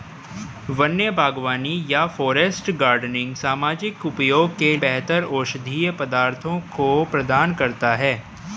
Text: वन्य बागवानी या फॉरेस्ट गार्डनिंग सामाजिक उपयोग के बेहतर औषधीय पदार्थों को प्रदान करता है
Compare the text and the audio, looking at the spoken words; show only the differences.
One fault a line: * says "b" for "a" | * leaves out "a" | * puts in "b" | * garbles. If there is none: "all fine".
all fine